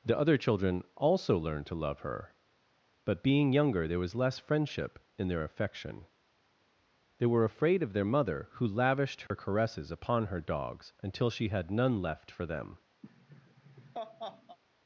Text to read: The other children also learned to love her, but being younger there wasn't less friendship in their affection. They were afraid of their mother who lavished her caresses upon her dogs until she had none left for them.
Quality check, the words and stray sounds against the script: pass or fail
fail